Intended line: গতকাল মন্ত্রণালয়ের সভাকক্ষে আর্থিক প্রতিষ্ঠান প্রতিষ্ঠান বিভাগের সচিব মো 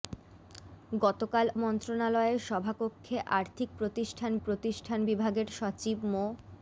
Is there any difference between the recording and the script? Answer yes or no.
no